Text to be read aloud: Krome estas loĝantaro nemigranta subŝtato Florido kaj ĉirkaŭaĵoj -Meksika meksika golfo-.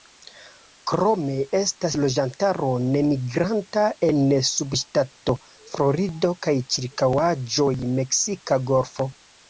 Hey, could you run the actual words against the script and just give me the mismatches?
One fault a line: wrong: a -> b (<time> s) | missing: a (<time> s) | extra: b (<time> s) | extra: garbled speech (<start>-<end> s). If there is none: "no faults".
extra: en (4.1 s)
missing: meksika (8.6 s)